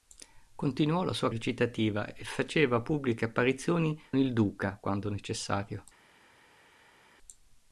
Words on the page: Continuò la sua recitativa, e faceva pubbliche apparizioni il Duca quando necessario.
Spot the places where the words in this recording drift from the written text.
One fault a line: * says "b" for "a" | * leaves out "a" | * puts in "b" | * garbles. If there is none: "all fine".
all fine